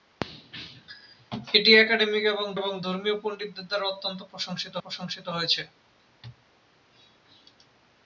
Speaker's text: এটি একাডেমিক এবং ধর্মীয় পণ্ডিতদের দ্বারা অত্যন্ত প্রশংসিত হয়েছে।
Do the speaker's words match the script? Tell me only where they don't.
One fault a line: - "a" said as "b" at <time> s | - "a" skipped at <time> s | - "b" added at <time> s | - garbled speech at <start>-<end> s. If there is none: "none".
- "এবং" added at 2.6 s
- "প্রশংসিত" added at 4.8 s